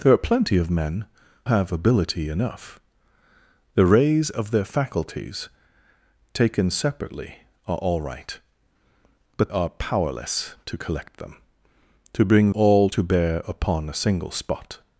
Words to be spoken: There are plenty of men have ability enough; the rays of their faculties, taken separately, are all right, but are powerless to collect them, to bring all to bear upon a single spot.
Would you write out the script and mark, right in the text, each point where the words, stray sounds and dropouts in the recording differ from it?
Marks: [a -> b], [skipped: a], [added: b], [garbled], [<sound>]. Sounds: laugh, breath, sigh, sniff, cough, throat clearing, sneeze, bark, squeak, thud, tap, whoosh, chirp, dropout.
There are plenty of men have ability enough; the rays of their faculties, taken separately, are all right, but are powerless to collect them, to bring all to bear upon a single spot.